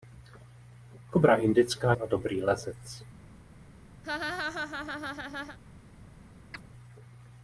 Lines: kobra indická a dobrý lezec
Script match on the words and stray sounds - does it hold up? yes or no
no